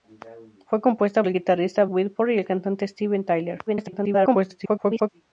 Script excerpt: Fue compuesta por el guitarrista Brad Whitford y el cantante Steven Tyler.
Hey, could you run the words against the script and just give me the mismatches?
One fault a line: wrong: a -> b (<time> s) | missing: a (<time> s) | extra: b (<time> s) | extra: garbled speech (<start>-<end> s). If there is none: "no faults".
missing: por (1.2 s)
missing: Brad (1.9 s)
extra: garbled speech (3.7-5.1 s)